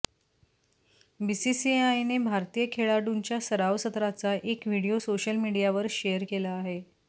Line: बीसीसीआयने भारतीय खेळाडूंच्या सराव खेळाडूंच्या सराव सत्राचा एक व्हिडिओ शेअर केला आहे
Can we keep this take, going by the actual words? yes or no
no